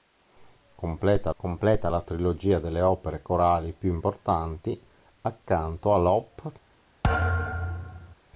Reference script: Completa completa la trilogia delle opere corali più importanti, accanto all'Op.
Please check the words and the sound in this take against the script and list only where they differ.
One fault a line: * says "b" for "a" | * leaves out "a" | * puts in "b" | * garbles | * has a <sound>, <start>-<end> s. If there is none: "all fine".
* has a thud, 7.0-8.2 s